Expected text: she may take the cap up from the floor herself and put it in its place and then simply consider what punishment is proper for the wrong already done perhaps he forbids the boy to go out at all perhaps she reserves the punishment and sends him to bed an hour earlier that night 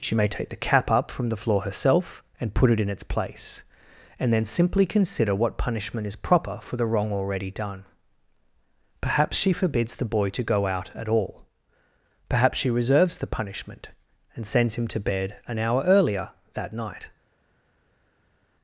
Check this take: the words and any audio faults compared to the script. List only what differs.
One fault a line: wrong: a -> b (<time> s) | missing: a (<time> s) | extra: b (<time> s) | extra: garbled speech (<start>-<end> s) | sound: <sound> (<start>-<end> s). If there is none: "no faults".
wrong: he -> she (9.4 s)